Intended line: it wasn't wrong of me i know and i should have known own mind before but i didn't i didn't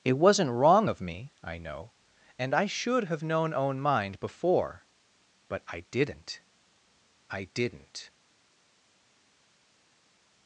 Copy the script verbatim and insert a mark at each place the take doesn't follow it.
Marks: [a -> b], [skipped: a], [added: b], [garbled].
it wasn't wrong of me i know and i should have known own mind before but i didn't i didn't